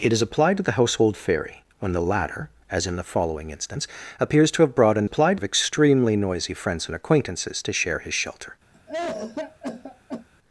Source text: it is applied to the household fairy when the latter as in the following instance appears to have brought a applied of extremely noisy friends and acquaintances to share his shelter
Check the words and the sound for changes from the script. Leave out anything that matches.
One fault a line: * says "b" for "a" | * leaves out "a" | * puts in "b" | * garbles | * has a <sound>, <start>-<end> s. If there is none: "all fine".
* has a cough, 8.7-10.3 s